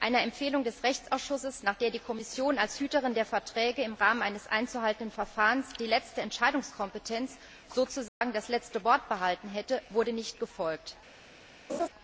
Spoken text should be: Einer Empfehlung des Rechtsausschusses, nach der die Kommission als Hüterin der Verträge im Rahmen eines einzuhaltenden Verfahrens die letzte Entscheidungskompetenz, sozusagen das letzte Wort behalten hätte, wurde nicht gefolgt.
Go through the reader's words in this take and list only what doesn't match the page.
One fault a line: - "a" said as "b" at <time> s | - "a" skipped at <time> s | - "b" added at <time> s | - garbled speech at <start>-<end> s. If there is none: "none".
none